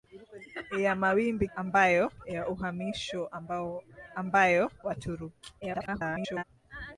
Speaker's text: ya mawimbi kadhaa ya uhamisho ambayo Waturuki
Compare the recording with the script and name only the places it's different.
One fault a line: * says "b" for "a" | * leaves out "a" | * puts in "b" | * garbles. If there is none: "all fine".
* says "ambayo" for "kadhaa"
* garbles